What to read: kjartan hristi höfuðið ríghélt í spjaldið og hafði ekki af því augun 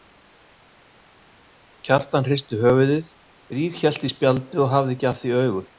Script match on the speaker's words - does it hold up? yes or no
yes